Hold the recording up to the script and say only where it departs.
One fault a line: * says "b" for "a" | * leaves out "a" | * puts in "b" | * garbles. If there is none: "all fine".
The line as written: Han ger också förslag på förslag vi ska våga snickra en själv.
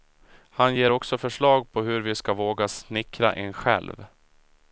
* says "hur" for "förslag"